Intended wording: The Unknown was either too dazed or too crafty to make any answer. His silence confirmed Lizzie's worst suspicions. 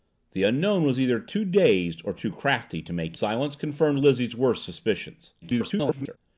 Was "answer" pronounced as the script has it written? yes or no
no